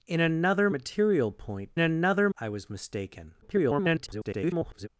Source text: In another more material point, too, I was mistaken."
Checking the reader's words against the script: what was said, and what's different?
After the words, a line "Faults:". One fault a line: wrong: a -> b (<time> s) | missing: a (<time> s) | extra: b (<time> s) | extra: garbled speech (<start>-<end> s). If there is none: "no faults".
In another material point, another, I was mistaken." [garbled]
Faults:
missing: more (0.7 s)
wrong: too -> another (1.8 s)
extra: garbled speech (3.4-4.9 s)